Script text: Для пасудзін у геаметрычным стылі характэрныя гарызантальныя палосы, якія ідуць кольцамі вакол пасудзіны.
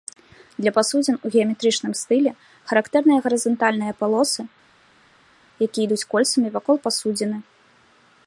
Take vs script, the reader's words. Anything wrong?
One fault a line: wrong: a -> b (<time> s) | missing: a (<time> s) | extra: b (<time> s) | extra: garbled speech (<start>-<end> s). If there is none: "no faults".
no faults